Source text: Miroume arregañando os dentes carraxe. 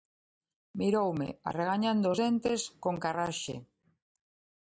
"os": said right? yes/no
yes